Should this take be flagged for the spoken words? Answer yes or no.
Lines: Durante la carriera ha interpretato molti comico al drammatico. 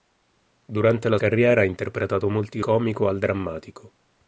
no